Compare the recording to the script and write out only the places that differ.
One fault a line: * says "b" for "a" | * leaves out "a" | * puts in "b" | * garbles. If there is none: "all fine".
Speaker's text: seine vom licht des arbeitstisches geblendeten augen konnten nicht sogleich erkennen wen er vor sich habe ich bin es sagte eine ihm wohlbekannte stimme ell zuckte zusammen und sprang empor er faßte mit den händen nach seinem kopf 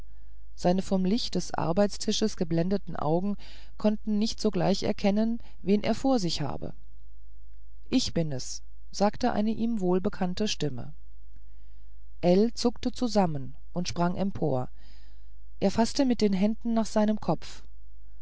all fine